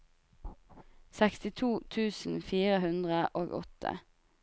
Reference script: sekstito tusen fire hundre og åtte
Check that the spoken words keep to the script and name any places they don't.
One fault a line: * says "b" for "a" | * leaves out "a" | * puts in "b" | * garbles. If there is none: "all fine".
all fine